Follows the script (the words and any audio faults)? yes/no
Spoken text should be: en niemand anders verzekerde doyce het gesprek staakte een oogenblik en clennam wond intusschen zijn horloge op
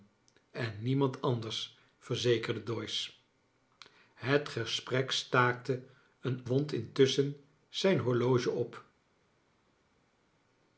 no